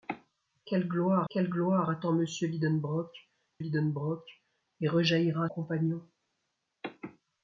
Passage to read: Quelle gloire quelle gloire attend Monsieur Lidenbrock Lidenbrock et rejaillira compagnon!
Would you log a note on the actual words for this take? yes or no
no